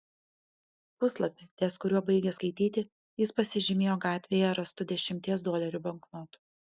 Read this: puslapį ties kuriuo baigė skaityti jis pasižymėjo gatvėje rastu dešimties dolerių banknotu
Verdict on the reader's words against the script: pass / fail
pass